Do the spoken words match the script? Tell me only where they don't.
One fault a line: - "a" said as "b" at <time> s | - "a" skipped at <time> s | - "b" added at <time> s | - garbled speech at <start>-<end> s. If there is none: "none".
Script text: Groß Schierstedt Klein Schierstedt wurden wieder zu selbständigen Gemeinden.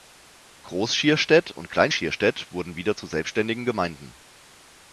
- "und" added at 1.5 s